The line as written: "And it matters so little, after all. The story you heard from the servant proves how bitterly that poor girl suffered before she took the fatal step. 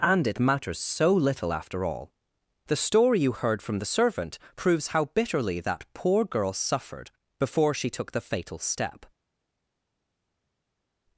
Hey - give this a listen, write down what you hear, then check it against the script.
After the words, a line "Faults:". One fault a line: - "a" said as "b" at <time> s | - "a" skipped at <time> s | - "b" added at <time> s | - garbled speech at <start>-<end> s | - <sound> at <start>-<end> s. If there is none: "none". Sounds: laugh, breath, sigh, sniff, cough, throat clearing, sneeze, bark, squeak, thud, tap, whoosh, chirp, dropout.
"And it matters so little, after all. The story you heard from the servant proves how bitterly that poor girl suffered before she took the fatal step.
Faults:
none